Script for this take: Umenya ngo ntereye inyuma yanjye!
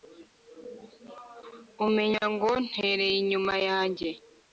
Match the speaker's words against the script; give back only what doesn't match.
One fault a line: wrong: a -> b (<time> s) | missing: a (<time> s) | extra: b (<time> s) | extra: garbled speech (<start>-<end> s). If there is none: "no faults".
no faults